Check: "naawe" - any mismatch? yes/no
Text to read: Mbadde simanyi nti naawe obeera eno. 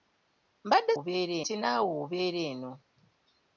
no